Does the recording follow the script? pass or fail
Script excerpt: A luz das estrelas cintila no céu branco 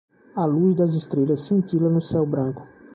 pass